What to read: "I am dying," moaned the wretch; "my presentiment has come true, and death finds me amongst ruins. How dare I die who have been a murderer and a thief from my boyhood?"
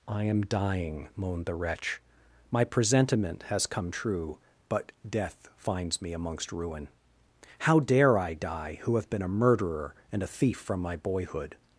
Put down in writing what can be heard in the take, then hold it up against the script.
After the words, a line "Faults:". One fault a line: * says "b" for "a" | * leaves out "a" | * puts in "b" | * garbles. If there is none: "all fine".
"I am dying," moaned the wretch; "my presentiment has come true, but death finds me amongst ruin. How dare I die who have been a murderer and a thief from my boyhood?"
Faults:
* says "but" for "and"
* says "ruin" for "ruins"